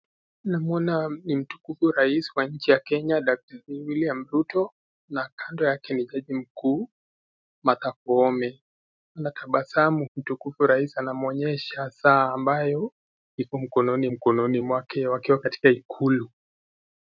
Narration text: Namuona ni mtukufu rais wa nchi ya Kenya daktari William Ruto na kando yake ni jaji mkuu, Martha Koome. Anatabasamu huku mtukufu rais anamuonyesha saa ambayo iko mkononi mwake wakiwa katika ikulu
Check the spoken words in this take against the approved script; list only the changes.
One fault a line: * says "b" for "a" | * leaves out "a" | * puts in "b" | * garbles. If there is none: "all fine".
* leaves out "huku"
* puts in "mkononi"